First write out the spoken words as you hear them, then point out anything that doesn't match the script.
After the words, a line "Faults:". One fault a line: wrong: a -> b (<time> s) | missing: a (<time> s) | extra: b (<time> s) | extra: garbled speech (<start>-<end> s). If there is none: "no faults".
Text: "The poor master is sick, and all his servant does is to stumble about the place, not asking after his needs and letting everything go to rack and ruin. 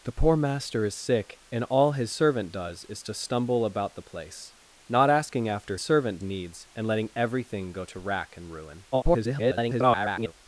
"The poor master is sick, and all his servant does is to stumble about the place, not asking after servant needs and letting everything go to rack and ruin. [garbled]
Faults:
wrong: his -> servant (5.8 s)
extra: garbled speech (8.9-10.3 s)